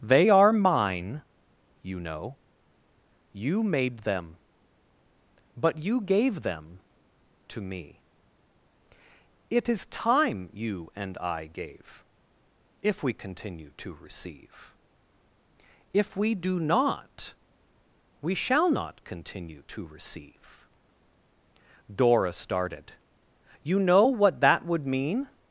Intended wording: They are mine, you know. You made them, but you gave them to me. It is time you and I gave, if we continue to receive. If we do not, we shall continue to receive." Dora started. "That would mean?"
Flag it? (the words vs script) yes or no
yes